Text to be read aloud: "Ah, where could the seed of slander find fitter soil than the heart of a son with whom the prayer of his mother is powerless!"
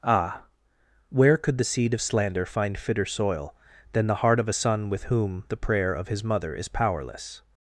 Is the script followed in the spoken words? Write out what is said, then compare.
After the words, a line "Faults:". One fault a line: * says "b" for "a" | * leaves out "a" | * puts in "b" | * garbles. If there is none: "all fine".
"Ah, where could the seed of slander find fitter soil than the heart of a son with whom the prayer of his mother is powerless!"
Faults:
all fine